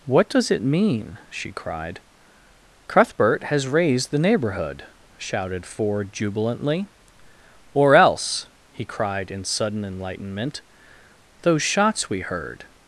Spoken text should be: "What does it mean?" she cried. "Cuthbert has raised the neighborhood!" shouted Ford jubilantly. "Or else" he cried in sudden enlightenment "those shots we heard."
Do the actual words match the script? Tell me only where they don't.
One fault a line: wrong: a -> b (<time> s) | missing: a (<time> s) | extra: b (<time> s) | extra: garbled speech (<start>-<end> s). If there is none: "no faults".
no faults